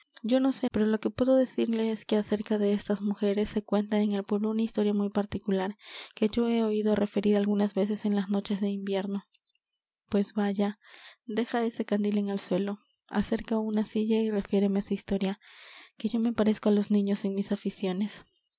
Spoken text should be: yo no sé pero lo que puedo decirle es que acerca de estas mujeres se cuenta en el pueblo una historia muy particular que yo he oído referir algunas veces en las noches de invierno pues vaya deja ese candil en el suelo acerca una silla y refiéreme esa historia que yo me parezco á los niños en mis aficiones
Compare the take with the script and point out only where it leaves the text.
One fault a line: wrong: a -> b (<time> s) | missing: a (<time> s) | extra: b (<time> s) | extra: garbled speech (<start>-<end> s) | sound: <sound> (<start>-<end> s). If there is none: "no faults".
no faults